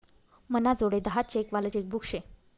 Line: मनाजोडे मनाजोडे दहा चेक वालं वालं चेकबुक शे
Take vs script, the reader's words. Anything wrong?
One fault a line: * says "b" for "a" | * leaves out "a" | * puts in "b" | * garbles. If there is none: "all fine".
* leaves out "मनाजोडे"
* leaves out "वालं"